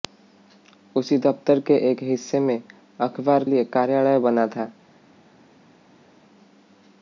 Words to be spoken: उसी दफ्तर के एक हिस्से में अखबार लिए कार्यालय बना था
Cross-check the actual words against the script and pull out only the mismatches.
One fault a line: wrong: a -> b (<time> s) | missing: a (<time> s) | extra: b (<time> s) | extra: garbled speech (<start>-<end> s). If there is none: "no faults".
no faults